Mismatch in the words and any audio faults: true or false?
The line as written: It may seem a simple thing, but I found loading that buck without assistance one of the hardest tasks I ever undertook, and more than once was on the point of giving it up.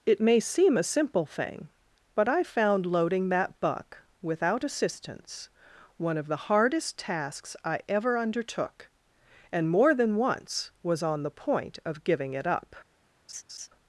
true